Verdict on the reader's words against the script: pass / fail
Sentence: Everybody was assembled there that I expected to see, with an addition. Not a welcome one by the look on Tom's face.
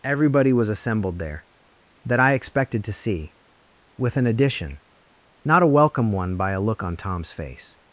fail